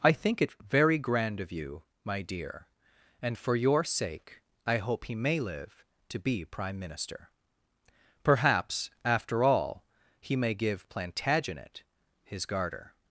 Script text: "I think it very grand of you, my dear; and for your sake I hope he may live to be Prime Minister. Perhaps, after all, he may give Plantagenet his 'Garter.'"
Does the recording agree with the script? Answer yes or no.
yes